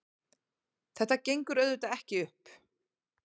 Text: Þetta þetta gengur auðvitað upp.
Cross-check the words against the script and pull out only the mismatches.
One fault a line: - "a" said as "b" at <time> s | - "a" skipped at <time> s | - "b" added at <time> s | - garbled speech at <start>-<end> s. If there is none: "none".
- "þetta" skipped at 1.2 s
- "ekki" added at 2.0 s